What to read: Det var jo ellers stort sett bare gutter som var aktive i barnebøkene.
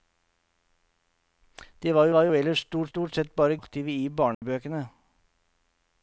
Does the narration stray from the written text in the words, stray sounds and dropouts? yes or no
yes